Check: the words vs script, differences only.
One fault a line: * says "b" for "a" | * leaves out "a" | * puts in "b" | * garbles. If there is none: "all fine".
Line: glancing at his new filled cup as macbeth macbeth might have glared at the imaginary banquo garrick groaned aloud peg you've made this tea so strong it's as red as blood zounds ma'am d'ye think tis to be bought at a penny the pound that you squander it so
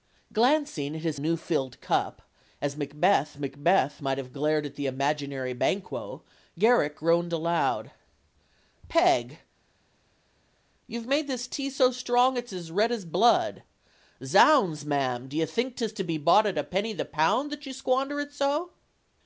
all fine